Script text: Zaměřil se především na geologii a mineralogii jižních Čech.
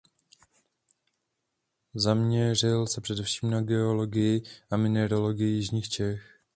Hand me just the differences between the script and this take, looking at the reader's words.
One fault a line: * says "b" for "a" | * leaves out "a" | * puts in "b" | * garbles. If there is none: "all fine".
all fine